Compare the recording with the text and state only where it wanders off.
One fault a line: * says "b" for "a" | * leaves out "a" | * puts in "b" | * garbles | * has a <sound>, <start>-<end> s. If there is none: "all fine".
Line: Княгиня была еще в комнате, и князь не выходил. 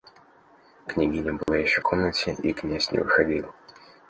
* has a dropout, 1.4-1.5 s